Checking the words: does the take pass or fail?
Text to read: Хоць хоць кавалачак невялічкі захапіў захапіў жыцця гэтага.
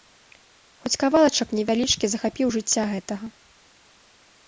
fail